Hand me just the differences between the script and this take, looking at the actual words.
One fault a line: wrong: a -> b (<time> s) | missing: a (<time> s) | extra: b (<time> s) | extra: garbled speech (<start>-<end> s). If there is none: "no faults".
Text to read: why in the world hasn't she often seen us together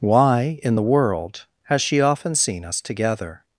wrong: hasn't -> has (1.6 s)